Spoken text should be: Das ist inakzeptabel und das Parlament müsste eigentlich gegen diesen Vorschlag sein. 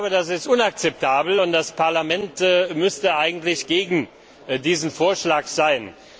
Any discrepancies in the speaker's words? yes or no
no